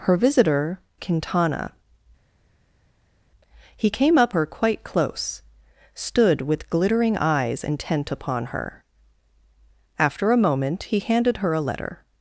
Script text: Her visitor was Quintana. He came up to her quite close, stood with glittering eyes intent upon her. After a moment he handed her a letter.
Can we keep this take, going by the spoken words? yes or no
no